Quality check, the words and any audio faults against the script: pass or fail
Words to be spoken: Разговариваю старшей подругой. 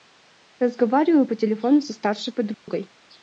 fail